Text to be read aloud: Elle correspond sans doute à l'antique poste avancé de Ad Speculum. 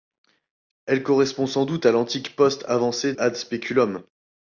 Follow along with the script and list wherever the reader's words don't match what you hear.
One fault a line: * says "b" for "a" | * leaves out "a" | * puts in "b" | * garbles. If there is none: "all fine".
* leaves out "de"